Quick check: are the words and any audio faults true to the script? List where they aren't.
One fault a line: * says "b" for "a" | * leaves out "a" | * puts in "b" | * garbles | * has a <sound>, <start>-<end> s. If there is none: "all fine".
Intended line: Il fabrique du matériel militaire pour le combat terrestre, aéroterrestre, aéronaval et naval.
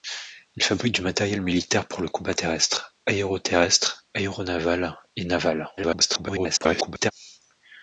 * garbles